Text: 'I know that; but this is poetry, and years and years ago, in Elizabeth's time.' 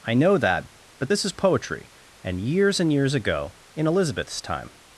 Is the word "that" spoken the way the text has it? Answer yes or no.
yes